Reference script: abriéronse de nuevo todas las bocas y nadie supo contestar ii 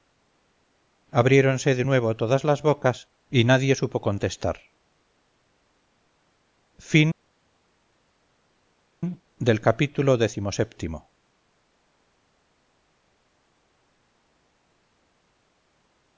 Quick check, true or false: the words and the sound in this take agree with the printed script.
true